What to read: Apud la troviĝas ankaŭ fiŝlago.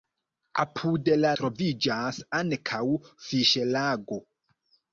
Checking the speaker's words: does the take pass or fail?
pass